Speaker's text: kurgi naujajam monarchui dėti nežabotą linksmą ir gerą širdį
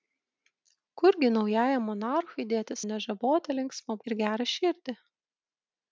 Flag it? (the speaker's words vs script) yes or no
no